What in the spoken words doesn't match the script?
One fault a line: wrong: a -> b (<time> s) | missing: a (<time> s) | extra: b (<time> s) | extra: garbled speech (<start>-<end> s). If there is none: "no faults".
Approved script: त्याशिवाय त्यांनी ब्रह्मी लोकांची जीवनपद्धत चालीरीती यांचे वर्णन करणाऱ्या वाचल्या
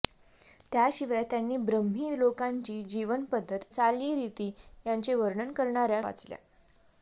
no faults